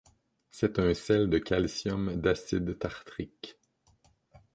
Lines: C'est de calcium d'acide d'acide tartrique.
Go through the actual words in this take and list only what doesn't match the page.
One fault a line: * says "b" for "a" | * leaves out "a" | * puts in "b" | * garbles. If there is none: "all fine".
* puts in "un sel"
* leaves out "d'acide"